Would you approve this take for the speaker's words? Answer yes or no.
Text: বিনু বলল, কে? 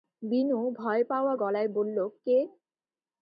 no